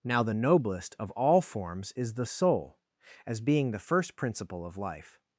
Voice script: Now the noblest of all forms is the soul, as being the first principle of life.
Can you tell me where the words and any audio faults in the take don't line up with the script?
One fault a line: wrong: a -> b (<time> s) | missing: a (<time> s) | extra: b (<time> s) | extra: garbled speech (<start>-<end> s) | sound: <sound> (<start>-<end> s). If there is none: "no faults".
no faults